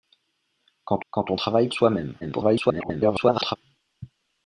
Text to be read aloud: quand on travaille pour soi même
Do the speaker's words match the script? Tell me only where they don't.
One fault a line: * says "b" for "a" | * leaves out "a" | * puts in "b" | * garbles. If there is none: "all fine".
* puts in "quand"
* leaves out "pour"
* garbles